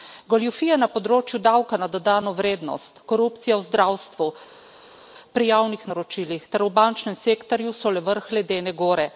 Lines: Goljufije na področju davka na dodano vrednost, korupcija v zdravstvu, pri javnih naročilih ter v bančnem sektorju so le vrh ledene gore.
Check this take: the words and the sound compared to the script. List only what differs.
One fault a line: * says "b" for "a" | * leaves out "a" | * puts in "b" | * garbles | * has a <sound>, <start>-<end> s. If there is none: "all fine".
all fine